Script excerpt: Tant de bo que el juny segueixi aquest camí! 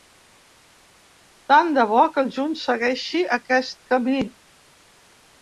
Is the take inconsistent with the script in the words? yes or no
no